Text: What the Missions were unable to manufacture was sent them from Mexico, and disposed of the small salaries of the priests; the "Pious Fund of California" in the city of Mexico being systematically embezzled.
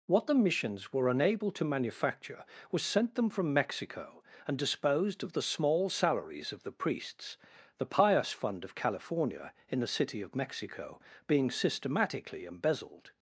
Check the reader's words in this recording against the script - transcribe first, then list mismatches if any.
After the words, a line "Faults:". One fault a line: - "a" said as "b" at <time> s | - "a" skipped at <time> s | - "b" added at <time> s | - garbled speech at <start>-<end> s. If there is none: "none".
What the Missions were unable to manufacture was sent them from Mexico, and disposed of the small salaries of the priests; the "Pious Fund of California" in the city of Mexico being systematically embezzled.
Faults:
none